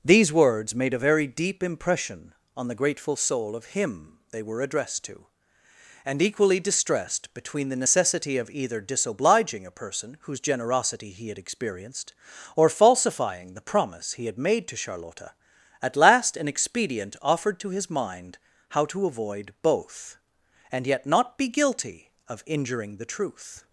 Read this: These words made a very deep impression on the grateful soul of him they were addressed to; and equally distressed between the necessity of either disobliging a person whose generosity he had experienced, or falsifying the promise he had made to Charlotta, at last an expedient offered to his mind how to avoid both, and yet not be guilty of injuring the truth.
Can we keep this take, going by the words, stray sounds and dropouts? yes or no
yes